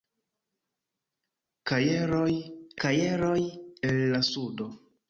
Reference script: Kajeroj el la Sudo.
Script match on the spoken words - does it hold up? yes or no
no